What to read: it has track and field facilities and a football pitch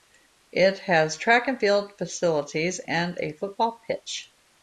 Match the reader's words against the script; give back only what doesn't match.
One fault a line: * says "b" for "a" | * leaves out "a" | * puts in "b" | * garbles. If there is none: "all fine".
all fine